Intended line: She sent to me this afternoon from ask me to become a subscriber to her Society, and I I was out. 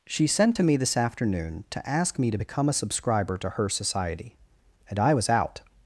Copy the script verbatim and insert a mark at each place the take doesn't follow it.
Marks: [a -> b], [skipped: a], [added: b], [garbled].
She sent to me this afternoon [from -> to] ask me to become a subscriber to her Society, and I [skipped: I] was out.